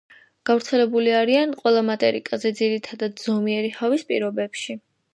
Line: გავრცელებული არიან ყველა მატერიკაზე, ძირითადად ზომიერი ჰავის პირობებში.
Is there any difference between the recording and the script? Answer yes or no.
no